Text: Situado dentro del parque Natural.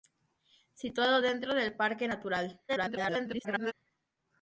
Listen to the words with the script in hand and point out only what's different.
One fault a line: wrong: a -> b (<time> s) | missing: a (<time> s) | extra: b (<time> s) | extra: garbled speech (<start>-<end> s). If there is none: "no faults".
extra: garbled speech (2.7-3.7 s)